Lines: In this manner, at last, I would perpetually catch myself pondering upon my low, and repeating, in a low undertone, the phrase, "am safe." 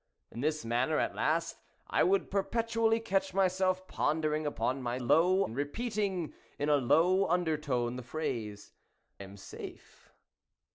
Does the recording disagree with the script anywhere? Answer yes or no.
no